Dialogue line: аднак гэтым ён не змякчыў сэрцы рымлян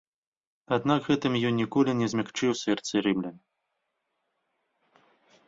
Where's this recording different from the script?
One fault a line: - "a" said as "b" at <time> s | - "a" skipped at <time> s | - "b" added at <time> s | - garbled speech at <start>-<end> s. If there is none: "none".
- "ніколі" added at 1.6 s